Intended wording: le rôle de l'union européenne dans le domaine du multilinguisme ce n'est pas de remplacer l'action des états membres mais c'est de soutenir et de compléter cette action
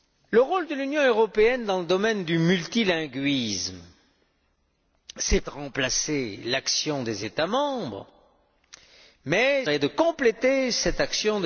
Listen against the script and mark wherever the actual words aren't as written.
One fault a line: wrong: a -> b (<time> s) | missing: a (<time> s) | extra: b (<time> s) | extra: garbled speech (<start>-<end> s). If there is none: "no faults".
missing: pas (5.4 s)
missing: c'est de soutenir (9.7 s)